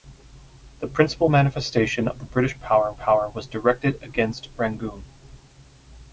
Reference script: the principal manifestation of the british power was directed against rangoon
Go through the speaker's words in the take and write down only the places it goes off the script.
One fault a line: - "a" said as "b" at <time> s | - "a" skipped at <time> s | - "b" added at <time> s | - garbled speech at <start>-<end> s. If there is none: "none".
- "power" added at 2.9 s